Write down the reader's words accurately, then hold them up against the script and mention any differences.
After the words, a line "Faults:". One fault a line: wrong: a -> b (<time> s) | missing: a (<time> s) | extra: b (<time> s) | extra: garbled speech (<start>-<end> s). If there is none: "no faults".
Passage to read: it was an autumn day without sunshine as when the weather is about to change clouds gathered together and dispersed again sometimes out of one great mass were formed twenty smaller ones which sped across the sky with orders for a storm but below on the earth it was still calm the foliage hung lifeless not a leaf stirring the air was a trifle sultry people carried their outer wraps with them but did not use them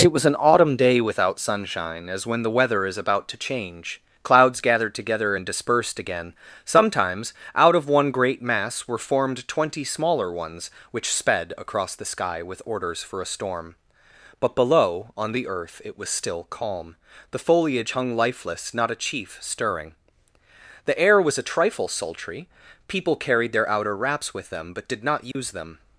it was an autumn day without sunshine as when the weather is about to change clouds gathered together and dispersed again sometimes out of one great mass were formed twenty smaller ones which sped across the sky with orders for a storm but below on the earth it was still calm the foliage hung lifeless not a chief stirring the air was a trifle sultry people carried their outer wraps with them but did not use them
Faults:
wrong: leaf -> chief (19.0 s)